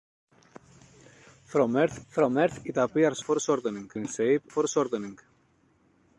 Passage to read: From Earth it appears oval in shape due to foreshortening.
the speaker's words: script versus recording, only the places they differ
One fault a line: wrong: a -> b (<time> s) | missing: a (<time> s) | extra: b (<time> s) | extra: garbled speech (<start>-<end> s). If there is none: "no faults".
extra: from Earth (2.1 s)
wrong: oval -> foreshortening (3.2 s)
missing: due to (4.4 s)